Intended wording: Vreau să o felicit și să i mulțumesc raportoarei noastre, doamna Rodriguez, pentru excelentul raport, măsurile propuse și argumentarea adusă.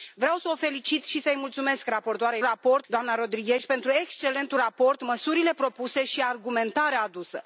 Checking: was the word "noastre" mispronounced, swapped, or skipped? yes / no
yes